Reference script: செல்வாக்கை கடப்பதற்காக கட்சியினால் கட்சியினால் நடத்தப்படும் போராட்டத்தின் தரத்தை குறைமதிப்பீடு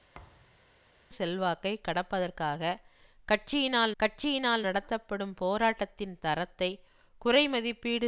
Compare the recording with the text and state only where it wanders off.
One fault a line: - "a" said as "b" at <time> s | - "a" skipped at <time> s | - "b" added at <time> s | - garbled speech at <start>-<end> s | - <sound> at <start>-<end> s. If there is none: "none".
- thud at 0.1-0.6 s